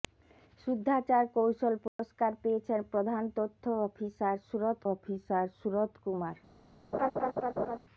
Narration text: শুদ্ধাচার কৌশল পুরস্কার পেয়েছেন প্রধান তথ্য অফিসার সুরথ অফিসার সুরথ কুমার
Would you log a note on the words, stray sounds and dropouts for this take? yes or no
yes